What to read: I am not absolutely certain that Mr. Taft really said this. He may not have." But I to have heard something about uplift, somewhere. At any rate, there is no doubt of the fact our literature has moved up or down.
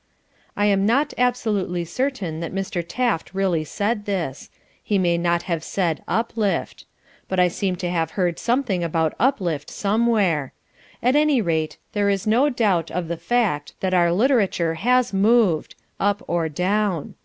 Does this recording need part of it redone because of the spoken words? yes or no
yes